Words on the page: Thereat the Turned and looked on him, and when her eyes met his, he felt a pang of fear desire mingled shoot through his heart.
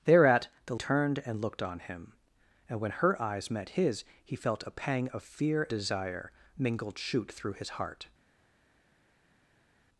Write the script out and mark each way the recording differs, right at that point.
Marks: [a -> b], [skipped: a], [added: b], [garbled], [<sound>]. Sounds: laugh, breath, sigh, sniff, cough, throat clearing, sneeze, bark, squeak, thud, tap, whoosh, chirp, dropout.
Thereat the Turned and looked on him, and when her eyes met his, he felt a pang of fear desire mingled shoot through his heart.